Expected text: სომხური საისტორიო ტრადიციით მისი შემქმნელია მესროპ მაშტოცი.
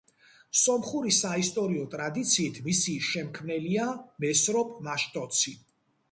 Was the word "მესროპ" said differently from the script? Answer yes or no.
no